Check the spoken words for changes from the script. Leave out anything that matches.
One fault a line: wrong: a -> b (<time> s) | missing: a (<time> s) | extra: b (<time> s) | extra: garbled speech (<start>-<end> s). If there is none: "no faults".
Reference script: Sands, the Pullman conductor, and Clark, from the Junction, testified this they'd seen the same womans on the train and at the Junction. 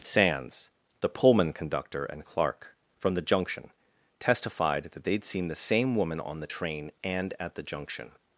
wrong: this -> that (4.9 s)
wrong: womans -> woman (6.0 s)